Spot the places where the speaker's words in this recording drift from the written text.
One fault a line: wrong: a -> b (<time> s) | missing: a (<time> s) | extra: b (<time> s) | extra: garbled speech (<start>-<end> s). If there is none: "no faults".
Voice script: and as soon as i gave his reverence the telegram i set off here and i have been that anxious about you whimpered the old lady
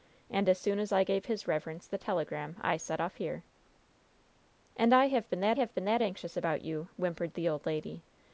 extra: have been that (5.5 s)